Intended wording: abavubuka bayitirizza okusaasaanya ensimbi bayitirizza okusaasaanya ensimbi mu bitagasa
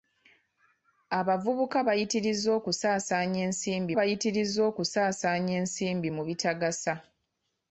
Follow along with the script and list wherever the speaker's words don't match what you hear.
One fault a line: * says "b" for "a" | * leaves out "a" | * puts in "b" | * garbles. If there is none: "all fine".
all fine